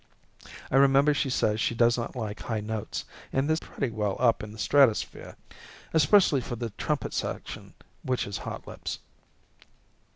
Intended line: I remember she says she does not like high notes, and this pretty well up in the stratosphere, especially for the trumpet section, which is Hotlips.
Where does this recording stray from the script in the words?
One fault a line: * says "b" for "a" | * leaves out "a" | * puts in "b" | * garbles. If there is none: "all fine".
all fine